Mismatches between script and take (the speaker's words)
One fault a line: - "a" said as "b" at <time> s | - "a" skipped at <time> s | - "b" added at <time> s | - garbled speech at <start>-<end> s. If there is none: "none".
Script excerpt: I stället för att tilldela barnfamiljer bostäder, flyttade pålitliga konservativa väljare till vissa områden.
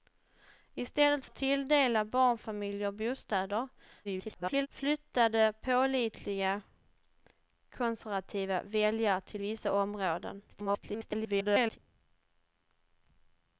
- "för" skipped at 1.2 s
- garbled speech at 4.0-4.7 s
- garbled speech at 10.5-11.8 s